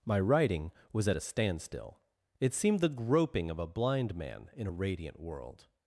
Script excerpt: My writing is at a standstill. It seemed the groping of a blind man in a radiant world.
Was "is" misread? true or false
true